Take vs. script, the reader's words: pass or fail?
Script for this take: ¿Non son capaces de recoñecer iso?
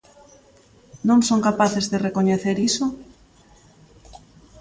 pass